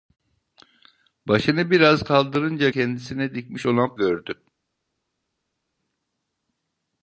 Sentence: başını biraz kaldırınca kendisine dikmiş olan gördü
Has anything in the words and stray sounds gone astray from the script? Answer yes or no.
no